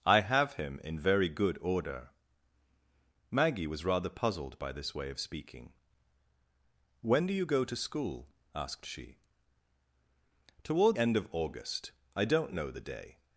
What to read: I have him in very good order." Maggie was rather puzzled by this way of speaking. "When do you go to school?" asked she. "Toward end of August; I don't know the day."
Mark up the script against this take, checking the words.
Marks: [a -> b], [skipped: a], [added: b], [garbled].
I have him in very good order." Maggie was rather puzzled by this way of speaking. "When do you go to school?" asked she. "Toward end of August; I don't know the day."